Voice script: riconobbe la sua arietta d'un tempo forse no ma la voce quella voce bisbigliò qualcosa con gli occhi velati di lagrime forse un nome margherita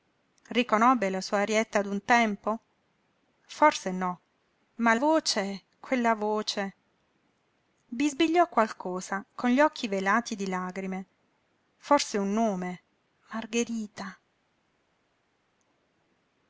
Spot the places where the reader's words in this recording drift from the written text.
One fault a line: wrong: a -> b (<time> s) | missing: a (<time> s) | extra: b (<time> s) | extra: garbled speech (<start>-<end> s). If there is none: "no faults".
missing: la (5.0 s)